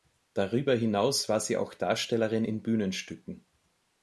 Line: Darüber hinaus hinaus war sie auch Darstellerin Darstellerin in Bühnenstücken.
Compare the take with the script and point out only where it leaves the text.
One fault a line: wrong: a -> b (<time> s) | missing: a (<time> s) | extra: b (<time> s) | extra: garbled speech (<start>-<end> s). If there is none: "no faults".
missing: hinaus (1.3 s)
missing: Darstellerin (2.4 s)